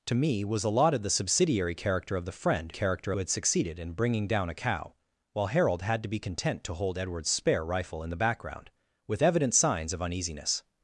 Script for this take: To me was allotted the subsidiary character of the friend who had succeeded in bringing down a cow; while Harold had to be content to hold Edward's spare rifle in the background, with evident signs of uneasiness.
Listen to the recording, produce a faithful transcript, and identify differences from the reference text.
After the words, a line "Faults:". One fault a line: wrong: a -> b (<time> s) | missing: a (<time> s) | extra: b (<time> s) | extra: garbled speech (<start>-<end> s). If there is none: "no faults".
To me was allotted the subsidiary character of the friend character had succeeded in bringing down a cow; while Harold had to be content to hold Edward's spare rifle in the background, with evident signs of uneasiness.
Faults:
wrong: who -> character (2.7 s)